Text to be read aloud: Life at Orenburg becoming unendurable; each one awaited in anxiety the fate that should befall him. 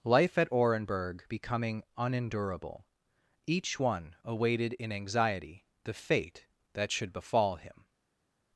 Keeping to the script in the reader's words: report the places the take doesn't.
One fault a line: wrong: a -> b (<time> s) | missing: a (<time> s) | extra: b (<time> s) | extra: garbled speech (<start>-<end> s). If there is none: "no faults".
no faults